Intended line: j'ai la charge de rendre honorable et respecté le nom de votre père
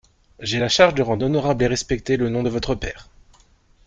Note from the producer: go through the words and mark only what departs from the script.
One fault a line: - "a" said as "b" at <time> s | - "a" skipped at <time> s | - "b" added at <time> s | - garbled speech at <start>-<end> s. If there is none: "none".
none